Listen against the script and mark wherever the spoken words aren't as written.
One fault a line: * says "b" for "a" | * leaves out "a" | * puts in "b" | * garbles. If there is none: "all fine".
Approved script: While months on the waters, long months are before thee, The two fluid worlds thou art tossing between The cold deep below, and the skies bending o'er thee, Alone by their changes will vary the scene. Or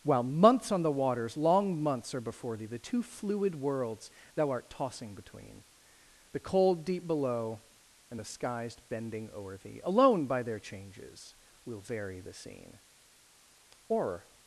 all fine